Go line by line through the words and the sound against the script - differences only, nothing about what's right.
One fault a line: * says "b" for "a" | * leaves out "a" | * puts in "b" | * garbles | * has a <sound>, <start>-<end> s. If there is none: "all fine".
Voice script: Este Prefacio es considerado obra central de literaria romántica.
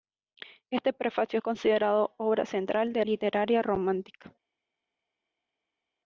all fine